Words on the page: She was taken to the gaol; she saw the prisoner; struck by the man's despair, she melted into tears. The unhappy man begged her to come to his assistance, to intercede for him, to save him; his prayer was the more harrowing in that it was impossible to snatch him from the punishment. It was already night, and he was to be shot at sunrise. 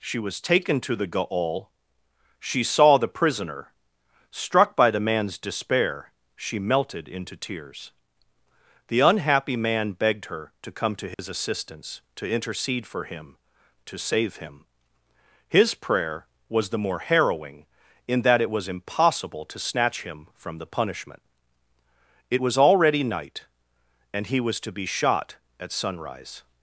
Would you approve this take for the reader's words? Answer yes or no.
yes